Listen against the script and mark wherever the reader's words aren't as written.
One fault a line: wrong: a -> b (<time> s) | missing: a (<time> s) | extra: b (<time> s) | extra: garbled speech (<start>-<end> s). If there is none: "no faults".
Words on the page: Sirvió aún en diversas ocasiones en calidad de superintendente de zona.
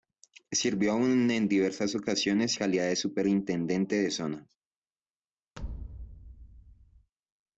missing: en (2.6 s)